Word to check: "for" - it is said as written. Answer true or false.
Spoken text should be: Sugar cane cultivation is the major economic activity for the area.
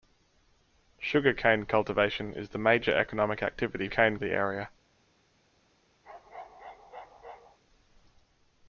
false